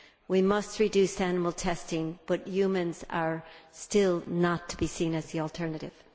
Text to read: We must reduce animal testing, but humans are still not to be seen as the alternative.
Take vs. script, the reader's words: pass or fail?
pass